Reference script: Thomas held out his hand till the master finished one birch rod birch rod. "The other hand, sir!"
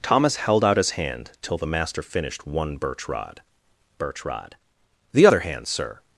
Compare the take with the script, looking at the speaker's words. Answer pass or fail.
pass